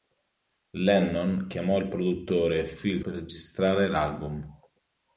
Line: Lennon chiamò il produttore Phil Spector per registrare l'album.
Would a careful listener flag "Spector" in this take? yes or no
yes